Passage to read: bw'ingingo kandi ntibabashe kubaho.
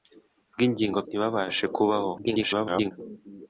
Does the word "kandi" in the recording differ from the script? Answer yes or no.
yes